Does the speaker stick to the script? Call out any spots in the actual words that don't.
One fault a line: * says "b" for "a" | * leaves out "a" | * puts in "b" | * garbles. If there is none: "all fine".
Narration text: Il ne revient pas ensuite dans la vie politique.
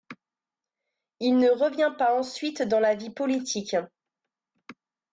all fine